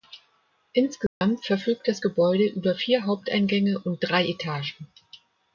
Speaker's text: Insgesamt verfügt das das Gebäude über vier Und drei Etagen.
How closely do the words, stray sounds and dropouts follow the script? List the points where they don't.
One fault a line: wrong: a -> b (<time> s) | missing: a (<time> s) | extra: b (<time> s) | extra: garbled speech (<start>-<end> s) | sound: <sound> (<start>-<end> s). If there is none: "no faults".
sound: dropout (1.1-1.2 s)
missing: das (2.0 s)
extra: Haupteingänge (3.0 s)